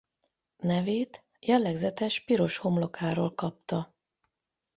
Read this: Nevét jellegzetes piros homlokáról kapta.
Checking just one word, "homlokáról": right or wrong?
right